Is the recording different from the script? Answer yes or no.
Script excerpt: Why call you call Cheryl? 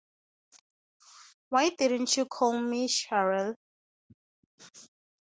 yes